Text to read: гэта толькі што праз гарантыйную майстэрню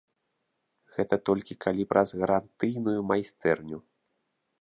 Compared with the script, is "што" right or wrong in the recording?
wrong